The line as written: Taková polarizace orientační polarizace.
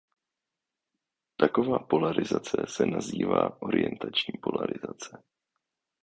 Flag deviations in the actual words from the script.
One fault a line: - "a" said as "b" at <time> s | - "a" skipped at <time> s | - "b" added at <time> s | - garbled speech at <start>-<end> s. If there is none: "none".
- "se nazývá" added at 2.7 s